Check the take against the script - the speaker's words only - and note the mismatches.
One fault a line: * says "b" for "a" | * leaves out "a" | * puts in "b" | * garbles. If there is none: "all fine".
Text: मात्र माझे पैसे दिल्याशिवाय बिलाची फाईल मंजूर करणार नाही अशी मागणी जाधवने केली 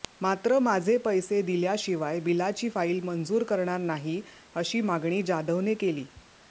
all fine